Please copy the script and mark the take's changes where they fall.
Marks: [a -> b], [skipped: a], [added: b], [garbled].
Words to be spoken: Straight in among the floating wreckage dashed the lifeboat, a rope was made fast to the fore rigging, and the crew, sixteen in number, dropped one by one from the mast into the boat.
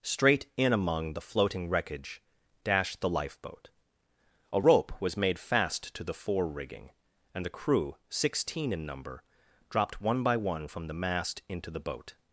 Straight in among the floating wreckage dashed the lifeboat, a rope was made fast to the fore rigging, and the crew, sixteen in number, dropped one by one from the mast into the boat.